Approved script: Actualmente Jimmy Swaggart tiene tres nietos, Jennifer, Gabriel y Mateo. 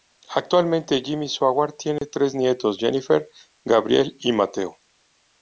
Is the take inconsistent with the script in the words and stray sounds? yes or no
yes